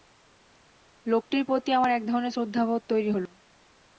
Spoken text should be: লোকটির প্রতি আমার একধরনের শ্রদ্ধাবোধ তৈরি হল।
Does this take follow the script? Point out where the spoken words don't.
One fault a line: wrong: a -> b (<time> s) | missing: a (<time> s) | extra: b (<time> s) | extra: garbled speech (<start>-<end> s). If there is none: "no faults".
no faults